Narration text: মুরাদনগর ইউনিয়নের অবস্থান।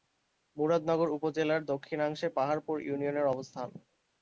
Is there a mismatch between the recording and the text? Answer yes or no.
yes